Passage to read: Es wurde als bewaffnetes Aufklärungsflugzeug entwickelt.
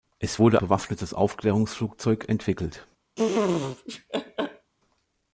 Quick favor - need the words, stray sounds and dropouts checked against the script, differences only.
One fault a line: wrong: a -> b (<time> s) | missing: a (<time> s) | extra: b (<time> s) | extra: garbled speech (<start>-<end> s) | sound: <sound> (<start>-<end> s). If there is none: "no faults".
missing: als (0.6 s)
sound: laugh (3.2-4.7 s)